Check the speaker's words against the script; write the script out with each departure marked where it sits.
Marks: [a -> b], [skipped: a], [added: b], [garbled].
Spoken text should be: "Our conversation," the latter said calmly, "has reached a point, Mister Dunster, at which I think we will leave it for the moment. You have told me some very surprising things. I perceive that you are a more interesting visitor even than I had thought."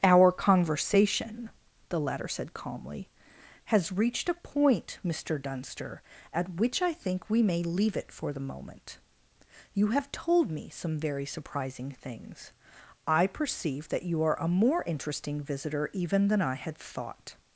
"Our conversation," the latter said calmly, "has reached a point, Mister Dunster, at which I think we [will -> may] leave it for the moment. You have told me some very surprising things. I perceive that you are a more interesting visitor even than I had thought."